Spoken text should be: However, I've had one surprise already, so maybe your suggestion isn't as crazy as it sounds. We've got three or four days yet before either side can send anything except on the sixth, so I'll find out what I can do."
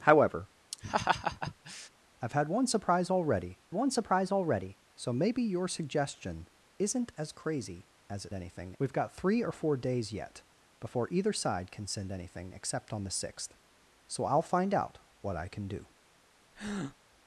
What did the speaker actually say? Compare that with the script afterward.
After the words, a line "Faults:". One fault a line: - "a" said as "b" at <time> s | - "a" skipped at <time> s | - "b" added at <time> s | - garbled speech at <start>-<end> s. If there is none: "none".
However, I've had one surprise already one surprise already, so maybe your suggestion isn't as crazy as it anything. We've got three or four days yet before either side can send anything except on the sixth, so I'll find out what I can do."
Faults:
- "one surprise already" added at 3.7 s
- "sounds" said as "anything" at 8.3 s